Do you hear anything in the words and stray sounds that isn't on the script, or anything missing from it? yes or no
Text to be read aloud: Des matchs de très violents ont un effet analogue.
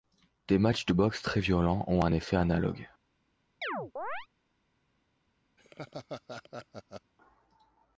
yes